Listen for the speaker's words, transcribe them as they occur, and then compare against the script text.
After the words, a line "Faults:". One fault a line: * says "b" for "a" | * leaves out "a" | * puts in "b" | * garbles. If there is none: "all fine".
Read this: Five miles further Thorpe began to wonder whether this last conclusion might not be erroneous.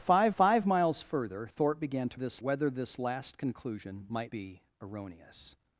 Five five miles further Thorpe began to this whether this last conclusion might be erroneous.
Faults:
* puts in "five"
* says "this" for "wonder"
* leaves out "not"